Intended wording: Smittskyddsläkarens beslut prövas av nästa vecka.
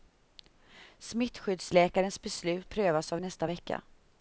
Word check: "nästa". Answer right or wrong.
right